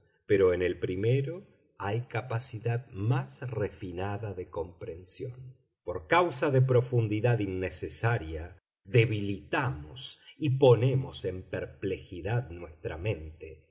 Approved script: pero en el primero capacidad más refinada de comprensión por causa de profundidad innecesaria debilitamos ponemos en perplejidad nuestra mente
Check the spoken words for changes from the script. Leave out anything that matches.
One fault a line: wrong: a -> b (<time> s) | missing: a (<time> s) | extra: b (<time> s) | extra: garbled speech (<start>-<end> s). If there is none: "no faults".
extra: hay (1.8 s)
extra: y (10.4 s)